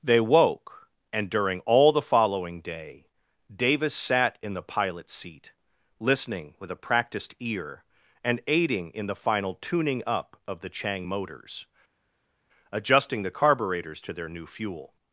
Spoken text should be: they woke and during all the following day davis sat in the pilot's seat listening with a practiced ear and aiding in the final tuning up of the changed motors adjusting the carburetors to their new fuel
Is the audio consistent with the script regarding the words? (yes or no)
no